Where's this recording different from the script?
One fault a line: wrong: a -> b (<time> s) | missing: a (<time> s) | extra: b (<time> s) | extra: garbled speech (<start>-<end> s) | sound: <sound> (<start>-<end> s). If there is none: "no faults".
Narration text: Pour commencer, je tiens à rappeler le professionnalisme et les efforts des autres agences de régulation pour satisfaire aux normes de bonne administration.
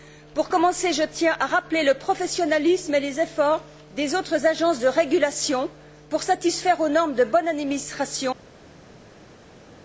no faults